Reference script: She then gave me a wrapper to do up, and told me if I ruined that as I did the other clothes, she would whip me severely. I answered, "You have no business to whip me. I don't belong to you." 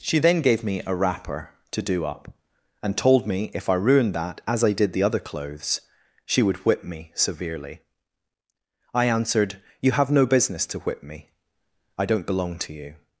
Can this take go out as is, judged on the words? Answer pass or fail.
pass